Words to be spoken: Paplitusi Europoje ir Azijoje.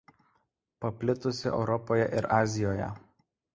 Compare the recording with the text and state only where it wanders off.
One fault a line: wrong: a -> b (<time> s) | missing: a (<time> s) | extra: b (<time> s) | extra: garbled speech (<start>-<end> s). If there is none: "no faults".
no faults